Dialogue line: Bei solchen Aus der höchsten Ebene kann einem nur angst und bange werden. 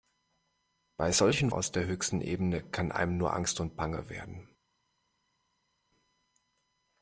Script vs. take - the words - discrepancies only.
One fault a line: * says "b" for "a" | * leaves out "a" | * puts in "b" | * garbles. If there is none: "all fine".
all fine